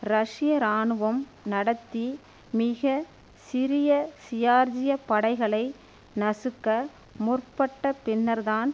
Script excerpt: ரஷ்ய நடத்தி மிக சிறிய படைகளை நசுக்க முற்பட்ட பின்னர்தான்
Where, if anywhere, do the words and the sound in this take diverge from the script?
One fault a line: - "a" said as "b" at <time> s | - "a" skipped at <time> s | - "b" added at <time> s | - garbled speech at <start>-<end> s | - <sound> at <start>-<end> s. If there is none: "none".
- "இராணுவம்" added at 0.6 s
- "ஜியார்ஜிய" added at 4.3 s